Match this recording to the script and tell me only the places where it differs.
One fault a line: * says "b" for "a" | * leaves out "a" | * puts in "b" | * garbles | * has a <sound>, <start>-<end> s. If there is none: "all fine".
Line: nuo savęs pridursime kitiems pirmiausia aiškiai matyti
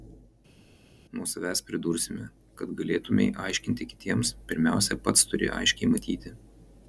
* puts in "kad galėtumei aiškinti"
* puts in "pats turi"